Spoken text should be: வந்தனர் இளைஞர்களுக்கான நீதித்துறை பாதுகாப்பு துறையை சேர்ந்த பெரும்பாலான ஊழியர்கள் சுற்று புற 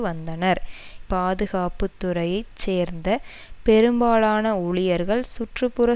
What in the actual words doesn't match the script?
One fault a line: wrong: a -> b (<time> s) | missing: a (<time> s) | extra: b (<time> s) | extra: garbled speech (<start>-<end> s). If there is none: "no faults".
missing: இளைஞர்களுக்கான நீதித்துறை (0.6 s)